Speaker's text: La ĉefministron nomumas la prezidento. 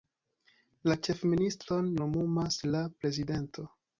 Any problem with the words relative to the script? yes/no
no